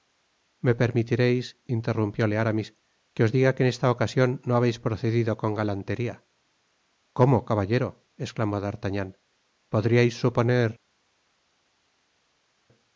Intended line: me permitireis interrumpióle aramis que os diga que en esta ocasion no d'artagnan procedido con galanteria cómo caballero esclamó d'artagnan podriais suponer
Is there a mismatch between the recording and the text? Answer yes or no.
yes